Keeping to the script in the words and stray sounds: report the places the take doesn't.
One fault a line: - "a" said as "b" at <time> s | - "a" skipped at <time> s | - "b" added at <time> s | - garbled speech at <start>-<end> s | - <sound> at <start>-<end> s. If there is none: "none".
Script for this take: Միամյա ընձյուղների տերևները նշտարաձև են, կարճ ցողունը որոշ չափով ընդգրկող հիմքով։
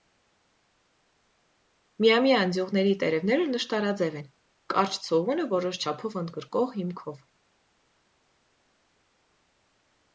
none